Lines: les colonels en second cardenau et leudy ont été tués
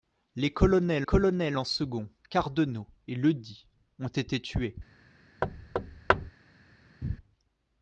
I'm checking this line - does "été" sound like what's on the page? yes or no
yes